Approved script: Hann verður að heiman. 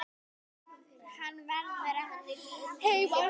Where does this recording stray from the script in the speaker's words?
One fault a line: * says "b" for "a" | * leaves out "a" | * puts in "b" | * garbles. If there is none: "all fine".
all fine